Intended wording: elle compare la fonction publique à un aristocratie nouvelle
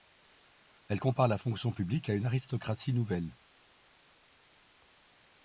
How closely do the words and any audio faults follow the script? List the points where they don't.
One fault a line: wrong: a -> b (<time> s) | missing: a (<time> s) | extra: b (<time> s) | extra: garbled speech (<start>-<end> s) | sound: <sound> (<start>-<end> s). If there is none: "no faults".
wrong: un -> une (2.1 s)